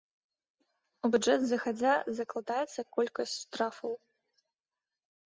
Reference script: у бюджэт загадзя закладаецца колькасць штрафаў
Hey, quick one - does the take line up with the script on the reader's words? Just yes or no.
yes